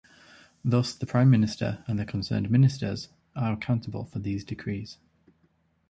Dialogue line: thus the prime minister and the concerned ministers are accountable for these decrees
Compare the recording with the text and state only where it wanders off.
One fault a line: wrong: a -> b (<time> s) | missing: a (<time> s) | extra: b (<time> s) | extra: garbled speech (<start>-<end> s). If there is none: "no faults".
no faults